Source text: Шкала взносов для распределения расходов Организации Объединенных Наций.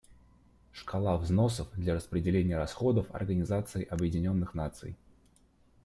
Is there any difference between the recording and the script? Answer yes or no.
no